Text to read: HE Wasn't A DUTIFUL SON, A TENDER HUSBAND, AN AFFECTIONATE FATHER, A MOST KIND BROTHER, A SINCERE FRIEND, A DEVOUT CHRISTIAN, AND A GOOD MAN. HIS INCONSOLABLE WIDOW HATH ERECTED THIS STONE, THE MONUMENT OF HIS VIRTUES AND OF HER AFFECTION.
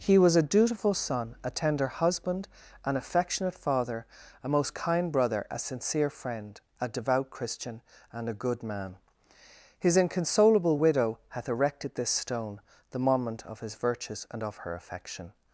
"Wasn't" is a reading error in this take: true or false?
true